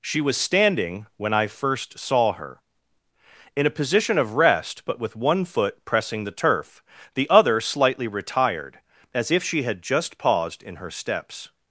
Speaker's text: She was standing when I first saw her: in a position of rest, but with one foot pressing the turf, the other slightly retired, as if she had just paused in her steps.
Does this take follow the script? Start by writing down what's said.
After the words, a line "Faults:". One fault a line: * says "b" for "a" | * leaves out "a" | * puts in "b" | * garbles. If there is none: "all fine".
She was standing when I first saw her: in a position of rest, but with one foot pressing the turf, the other slightly retired, as if she had just paused in her steps.
Faults:
all fine